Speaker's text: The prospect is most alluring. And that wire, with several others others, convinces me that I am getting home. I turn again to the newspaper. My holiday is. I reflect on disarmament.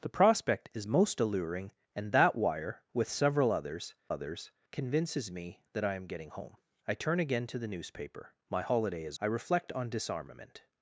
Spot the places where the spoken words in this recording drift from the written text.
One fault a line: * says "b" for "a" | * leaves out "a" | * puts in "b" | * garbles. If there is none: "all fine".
all fine